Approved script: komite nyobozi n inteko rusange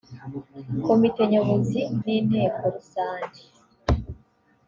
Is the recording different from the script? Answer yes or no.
no